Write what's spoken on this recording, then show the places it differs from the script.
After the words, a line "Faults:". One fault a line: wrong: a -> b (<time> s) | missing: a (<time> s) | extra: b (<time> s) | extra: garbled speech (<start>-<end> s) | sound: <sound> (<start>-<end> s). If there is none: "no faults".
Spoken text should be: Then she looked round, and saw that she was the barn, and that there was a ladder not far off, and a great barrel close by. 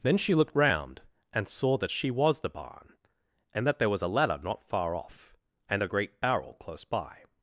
Then she looked round, and saw that she was the barn, and that there was a ladder not far off, and a great barrel close by.
Faults:
no faults